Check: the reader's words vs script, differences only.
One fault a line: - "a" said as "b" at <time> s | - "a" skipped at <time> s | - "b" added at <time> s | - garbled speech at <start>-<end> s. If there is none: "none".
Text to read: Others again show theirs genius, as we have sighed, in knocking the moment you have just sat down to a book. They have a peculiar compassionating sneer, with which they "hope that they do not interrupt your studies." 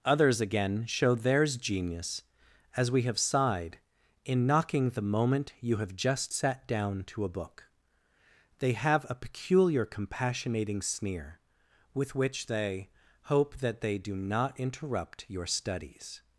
none